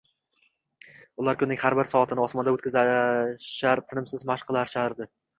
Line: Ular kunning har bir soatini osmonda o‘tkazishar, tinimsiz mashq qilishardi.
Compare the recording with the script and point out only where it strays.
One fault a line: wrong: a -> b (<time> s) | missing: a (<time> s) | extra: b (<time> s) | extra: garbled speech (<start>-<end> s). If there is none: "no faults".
no faults